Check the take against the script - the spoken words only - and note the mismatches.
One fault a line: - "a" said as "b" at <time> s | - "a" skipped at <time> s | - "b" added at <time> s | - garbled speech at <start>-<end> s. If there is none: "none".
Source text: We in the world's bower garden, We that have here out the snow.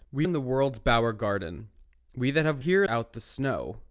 none